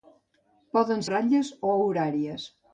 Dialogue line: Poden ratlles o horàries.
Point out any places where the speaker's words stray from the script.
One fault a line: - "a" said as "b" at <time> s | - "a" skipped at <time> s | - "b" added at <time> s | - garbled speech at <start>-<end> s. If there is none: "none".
none